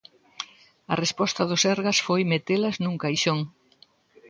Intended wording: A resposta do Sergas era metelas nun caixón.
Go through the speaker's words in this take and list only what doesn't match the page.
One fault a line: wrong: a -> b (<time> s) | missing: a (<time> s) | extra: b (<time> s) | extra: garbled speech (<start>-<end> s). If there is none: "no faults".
wrong: era -> foi (2.1 s)